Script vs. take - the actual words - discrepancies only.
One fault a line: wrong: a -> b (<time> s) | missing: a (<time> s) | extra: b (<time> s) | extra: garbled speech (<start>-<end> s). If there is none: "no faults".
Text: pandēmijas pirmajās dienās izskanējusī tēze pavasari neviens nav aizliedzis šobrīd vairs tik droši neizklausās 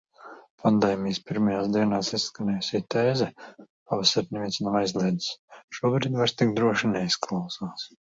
no faults